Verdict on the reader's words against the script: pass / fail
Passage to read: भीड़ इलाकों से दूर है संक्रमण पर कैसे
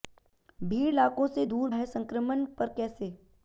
pass